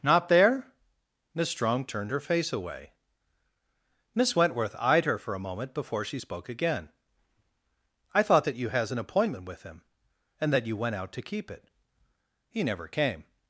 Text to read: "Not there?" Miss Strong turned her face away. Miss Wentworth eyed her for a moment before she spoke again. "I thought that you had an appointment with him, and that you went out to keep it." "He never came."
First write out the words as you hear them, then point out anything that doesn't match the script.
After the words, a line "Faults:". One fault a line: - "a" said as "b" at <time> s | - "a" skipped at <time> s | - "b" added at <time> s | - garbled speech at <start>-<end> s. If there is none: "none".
"Not there?" Miss Strong turned her face away. Miss Wentworth eyed her for a moment before she spoke again. "I thought that you has an appointment with him, and that you went out to keep it." "He never came."
Faults:
- "had" said as "has" at 8.7 s